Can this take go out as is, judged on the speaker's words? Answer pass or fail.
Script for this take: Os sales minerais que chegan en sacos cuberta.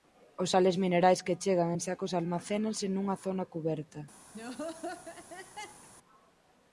fail